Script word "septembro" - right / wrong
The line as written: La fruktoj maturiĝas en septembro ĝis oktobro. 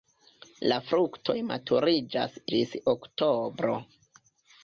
wrong